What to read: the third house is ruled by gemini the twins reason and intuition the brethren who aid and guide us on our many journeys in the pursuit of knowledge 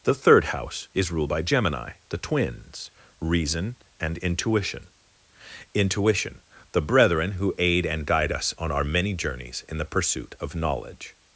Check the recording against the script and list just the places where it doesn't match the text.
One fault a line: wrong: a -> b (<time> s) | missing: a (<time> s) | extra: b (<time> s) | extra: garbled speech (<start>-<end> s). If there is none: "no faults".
extra: intuition (5.7 s)